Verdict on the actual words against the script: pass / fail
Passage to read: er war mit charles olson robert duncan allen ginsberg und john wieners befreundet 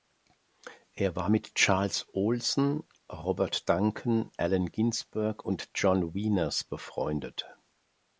pass